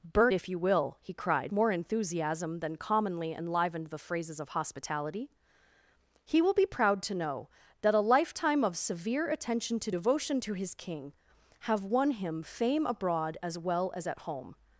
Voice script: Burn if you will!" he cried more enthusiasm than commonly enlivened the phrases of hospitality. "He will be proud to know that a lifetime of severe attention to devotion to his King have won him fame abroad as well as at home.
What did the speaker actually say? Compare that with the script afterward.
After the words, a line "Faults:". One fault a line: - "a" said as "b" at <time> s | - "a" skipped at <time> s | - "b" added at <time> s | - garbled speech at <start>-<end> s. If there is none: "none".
Burn if you will!" he cried more enthusiasm than commonly enlivened the phrases of hospitality. "He will be proud to know that a lifetime of severe attention to devotion to his King have won him fame abroad as well as at home.
Faults:
none